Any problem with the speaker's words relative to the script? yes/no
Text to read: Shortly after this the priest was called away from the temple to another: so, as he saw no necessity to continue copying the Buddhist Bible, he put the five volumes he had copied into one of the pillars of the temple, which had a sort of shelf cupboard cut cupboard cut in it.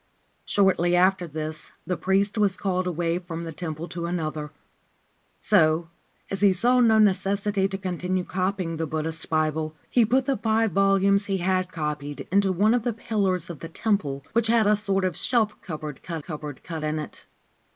no